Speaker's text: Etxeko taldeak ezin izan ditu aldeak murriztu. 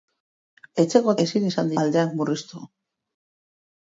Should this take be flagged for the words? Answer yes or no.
yes